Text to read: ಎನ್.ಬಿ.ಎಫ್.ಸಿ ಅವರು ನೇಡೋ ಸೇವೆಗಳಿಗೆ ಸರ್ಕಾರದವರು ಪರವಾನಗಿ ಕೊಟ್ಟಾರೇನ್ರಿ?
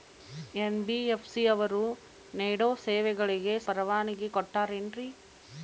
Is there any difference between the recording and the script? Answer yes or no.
yes